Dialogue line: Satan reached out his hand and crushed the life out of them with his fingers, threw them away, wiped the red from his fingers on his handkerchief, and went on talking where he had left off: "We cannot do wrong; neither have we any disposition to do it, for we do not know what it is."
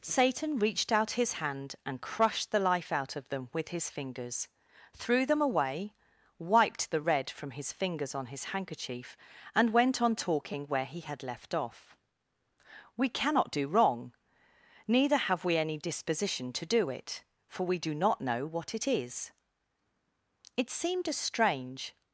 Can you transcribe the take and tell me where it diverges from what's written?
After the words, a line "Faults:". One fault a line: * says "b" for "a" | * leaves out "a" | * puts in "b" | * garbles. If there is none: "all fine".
Satan reached out his hand and crushed the life out of them with his fingers, threw them away, wiped the red from his fingers on his handkerchief, and went on talking where he had left off: "We cannot do wrong; neither have we any disposition to do it, for we do not know what it is." It seemed a strange
Faults:
* puts in "It seemed a strange"